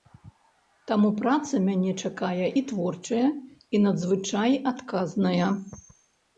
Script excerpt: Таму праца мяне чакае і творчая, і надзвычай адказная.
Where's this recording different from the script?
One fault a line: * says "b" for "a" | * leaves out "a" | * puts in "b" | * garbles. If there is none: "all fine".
all fine